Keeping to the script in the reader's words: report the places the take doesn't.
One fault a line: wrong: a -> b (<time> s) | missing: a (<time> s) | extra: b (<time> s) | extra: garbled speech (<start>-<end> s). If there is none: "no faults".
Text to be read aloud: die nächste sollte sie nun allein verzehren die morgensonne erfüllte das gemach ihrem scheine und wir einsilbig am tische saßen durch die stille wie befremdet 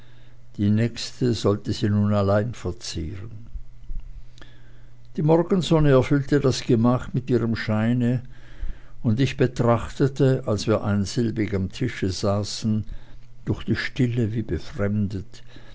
extra: mit (7.1 s)
extra: ich betrachtete als (9.2 s)